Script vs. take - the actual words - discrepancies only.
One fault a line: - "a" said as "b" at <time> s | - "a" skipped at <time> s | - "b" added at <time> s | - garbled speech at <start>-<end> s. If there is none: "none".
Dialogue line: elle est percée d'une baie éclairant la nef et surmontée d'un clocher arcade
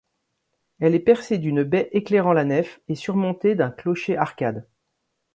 none